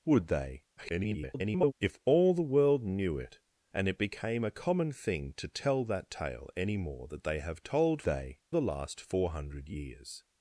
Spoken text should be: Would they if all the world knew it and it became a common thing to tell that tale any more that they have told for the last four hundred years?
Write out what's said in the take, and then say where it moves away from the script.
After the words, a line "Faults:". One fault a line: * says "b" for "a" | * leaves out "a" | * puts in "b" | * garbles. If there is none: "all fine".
Would they [garbled] if all the world knew it and it became a common thing to tell that tale any more that they have told they the last four hundred years?
Faults:
* garbles
* says "they" for "for"